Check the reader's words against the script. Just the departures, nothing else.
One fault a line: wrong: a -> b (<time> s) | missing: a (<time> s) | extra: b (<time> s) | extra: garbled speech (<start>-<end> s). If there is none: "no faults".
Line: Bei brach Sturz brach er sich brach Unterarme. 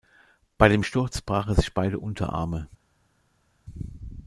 wrong: brach -> dem (0.7 s)
wrong: brach -> beide (1.7 s)